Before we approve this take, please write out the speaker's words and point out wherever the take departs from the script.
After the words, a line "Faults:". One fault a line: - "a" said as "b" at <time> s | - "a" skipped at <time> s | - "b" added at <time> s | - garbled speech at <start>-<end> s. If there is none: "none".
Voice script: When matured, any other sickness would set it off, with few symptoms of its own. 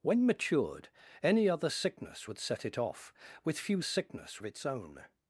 When matured, any other sickness would set it off, with few sickness of its own.
Faults:
- "symptoms" said as "sickness" at 3.8 s